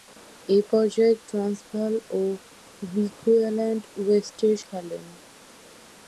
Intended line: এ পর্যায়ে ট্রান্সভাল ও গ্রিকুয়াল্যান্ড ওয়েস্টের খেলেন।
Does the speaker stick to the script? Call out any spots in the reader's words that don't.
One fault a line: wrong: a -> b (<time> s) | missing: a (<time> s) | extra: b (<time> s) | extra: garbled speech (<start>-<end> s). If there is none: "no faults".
no faults